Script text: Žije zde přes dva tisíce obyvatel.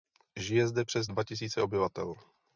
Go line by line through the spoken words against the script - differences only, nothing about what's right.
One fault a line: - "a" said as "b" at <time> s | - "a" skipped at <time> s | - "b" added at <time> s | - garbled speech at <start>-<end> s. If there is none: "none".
none